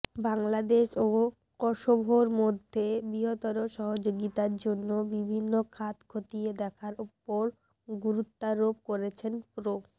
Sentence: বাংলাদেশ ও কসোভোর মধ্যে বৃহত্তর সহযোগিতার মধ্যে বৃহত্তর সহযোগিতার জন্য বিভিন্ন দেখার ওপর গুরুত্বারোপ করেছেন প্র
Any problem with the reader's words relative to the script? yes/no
yes